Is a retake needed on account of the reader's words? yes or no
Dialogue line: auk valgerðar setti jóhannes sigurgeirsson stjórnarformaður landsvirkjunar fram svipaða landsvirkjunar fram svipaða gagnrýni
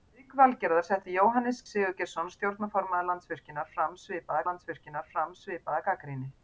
no